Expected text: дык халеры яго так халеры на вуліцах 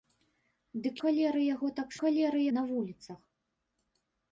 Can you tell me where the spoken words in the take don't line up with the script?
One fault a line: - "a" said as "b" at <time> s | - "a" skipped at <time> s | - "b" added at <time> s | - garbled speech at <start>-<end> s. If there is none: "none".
none